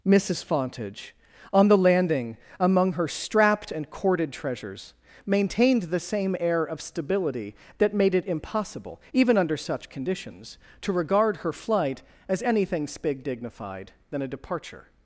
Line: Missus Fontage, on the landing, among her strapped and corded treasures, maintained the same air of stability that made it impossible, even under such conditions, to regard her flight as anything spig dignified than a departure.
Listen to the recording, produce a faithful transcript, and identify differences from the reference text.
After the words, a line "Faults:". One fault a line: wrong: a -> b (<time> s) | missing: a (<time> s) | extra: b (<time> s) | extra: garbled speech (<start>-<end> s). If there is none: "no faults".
Missus Fontage, on the landing, among her strapped and corded treasures, maintained the same air of stability that made it impossible, even under such conditions, to regard her flight as anything spig dignified than a departure.
Faults:
no faults